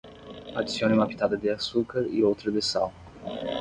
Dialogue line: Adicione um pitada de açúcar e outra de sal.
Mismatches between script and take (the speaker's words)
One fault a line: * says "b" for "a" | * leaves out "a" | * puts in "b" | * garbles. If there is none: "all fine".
* says "uma" for "um"